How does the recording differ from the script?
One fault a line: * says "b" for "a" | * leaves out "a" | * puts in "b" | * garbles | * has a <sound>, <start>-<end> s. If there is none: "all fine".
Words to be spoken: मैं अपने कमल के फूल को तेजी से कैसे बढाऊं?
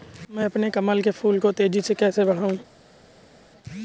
all fine